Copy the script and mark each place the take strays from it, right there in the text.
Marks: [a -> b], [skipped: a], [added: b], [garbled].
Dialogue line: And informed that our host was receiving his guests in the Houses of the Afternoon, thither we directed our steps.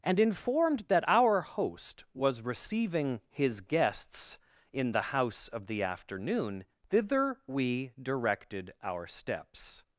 And informed that our host was receiving his guests in the [Houses -> House] of the Afternoon, thither we directed our steps.